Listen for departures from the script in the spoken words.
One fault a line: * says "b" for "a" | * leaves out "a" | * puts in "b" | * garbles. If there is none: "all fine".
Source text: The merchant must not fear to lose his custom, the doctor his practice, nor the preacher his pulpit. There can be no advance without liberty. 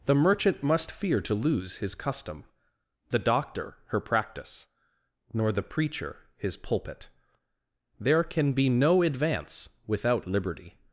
* leaves out "not"
* says "her" for "his"